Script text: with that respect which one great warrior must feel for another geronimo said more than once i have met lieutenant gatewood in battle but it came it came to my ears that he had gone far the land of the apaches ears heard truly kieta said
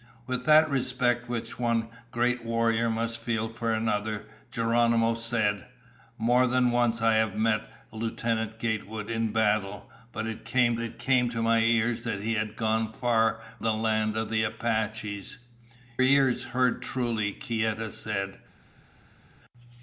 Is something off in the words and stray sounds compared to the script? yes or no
no